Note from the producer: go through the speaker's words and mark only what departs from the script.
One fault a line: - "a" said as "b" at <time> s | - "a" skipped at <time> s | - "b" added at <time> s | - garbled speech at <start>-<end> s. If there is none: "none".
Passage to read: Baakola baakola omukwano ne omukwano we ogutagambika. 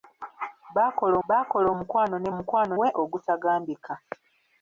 none